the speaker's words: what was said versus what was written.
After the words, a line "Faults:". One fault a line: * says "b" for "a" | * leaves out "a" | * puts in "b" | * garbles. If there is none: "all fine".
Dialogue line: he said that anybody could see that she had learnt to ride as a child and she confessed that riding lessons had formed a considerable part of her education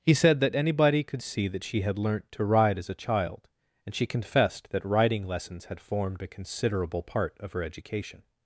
he said that anybody could see that she had learnt to ride as a child and she confessed that riding lessons had formed a considerable part of her education
Faults:
all fine